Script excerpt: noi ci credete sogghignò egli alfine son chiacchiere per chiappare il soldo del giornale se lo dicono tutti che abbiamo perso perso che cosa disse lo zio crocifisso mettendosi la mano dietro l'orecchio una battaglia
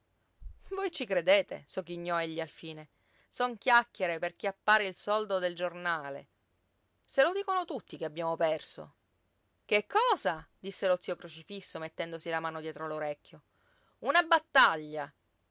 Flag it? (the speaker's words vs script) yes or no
yes